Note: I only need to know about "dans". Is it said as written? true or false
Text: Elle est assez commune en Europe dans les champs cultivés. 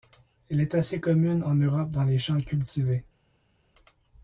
true